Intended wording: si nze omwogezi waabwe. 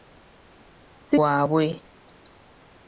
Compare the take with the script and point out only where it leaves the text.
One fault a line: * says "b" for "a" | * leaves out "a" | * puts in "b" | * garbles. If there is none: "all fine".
* leaves out "nze omwogezi"